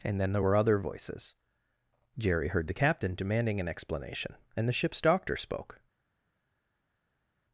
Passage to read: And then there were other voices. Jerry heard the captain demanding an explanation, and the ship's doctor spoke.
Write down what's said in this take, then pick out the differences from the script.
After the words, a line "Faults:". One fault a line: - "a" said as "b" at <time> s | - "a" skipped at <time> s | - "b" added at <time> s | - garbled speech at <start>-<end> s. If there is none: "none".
And then there were other voices. Jerry heard the captain demanding an explanation, and the ship's doctor spoke.
Faults:
none